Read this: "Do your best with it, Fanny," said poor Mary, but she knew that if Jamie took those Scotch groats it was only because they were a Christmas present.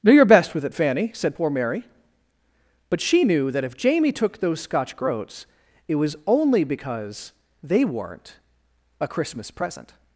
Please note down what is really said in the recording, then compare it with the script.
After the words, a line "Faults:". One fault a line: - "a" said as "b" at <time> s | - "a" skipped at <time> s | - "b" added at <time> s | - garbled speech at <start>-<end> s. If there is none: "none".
"Do your best with it, Fanny," said poor Mary, but she knew that if Jamie took those Scotch groats it was only because they weren't a Christmas present.
Faults:
- "were" said as "weren't" at 7.8 s